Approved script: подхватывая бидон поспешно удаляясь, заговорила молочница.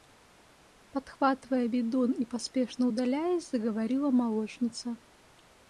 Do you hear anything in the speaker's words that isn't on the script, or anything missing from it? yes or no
yes